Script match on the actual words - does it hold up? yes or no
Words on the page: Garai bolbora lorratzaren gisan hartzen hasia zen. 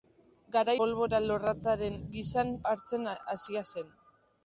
yes